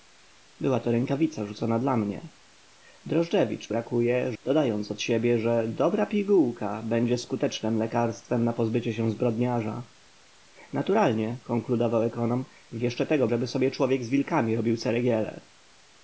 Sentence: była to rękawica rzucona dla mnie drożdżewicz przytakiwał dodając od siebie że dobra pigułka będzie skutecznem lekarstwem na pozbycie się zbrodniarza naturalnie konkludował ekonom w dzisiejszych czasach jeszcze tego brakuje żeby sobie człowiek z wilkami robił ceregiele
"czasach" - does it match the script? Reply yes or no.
no